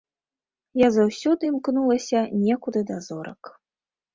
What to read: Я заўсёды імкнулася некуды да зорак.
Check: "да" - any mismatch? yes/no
no